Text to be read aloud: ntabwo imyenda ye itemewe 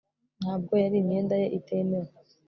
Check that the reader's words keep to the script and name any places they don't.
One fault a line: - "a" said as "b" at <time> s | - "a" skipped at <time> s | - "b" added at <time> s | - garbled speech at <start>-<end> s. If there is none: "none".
- "yari" added at 0.8 s